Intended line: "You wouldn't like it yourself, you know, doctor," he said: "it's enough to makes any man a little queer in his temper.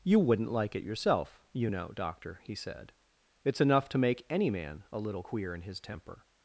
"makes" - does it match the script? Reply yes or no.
no